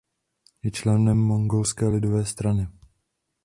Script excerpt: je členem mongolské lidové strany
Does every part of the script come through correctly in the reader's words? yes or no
yes